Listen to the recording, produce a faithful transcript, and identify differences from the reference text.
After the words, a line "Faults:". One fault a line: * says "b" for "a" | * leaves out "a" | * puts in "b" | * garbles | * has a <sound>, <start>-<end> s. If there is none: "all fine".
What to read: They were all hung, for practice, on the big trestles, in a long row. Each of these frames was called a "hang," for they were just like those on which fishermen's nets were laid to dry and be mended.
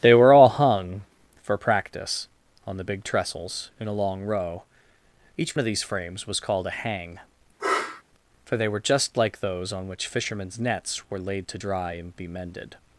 They were all hung, for practice, on the big trestles, in a long row. Each of these frames was called a "hang," for they were just like those on which fishermen's nets were laid to dry and be mended.
Faults:
* has a sniff, 7.6-8.0 s